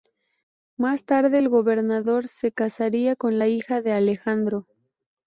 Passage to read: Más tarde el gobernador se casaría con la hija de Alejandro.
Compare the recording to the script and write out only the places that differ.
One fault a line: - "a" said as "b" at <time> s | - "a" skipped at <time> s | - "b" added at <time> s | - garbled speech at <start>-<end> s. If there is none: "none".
none